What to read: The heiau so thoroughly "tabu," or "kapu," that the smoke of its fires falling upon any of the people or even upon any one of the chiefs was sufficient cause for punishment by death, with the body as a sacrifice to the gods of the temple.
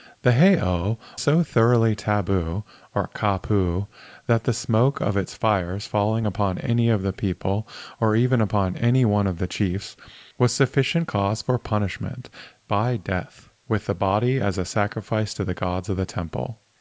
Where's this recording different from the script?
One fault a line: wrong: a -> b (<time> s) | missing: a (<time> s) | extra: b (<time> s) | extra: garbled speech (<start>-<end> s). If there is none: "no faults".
no faults